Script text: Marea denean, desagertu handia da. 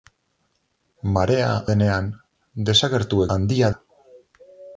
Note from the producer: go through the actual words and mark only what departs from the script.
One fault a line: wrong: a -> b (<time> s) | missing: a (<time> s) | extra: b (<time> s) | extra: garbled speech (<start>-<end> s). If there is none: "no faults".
no faults